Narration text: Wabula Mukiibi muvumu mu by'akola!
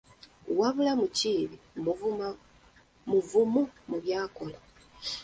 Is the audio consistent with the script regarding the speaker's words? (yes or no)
yes